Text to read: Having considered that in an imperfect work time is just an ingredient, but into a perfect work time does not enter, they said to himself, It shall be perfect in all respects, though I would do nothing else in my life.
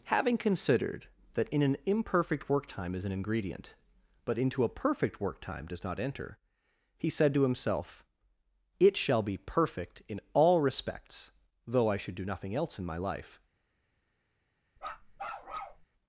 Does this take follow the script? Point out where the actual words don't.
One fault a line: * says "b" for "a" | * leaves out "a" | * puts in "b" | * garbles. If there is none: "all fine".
* leaves out "just"
* says "he" for "they"
* says "should" for "would"